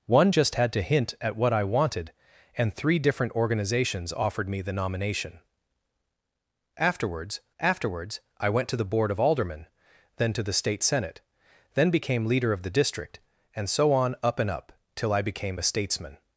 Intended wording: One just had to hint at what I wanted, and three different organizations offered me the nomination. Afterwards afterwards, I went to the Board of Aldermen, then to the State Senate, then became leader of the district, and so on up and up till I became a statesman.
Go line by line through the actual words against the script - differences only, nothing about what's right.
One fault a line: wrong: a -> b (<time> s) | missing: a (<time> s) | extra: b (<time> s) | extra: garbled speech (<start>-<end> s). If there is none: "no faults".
no faults